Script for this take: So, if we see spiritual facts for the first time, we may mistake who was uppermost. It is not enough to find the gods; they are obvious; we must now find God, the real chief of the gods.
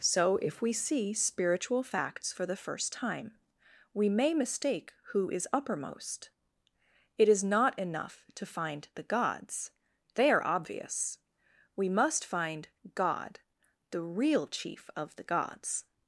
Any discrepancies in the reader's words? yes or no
yes